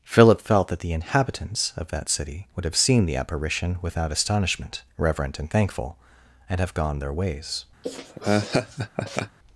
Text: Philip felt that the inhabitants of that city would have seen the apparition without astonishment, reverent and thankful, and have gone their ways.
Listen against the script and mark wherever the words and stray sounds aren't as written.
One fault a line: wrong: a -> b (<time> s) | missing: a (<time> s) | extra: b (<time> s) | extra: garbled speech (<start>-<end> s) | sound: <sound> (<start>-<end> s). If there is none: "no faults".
sound: laugh (7.8-9.4 s)